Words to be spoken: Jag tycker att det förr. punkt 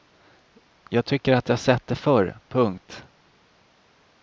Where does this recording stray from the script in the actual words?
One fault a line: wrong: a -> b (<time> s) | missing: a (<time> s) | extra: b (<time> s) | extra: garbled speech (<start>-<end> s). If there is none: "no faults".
extra: jag sett (1.5 s)